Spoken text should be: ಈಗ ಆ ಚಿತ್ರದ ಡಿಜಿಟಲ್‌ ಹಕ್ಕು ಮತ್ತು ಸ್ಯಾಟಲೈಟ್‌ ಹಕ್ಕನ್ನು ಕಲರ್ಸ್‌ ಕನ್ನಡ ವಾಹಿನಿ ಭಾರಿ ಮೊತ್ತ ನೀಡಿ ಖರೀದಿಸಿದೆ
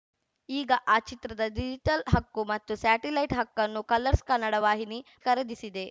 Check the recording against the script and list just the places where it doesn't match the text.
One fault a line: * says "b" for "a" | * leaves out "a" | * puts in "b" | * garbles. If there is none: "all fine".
* leaves out "ಭಾರಿ ಮೊತ್ತ ನೀಡಿ"